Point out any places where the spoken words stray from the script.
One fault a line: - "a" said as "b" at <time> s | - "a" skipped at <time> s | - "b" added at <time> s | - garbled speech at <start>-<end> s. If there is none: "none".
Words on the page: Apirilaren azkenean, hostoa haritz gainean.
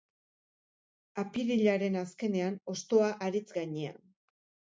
none